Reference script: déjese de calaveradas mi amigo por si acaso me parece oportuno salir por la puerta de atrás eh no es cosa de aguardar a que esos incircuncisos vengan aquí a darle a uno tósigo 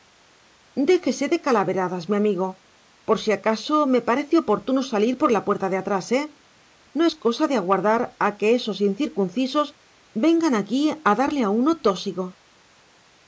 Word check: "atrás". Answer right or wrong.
right